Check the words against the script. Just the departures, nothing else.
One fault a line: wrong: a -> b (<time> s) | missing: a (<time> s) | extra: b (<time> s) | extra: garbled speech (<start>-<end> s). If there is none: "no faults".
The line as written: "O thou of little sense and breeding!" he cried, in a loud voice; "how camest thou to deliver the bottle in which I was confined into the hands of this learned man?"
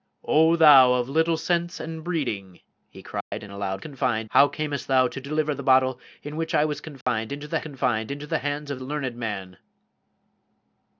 wrong: voice -> confined (3.8 s)
extra: confined into the (7.6 s)
missing: this (8.8 s)